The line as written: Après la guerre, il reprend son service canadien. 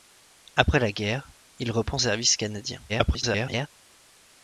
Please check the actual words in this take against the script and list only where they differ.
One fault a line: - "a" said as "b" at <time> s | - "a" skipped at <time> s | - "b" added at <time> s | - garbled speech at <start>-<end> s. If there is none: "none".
- "son" skipped at 2.0 s
- garbled speech at 2.9-3.7 s